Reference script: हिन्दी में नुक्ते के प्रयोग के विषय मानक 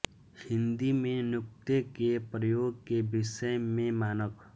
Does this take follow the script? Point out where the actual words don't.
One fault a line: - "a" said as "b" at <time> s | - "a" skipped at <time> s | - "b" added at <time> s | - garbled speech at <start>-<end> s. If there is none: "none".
- "में" added at 3.6 s